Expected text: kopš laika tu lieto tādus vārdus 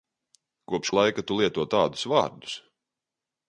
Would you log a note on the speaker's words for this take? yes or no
no